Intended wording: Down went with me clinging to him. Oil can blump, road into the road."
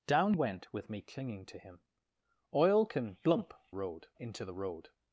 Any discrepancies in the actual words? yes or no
no